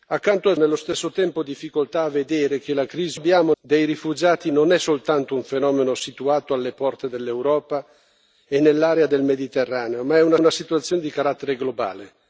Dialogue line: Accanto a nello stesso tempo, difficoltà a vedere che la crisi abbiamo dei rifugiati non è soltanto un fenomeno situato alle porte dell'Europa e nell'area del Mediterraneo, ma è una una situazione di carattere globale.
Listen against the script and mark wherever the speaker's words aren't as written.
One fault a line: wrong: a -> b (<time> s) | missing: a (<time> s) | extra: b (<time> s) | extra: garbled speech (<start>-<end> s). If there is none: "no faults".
no faults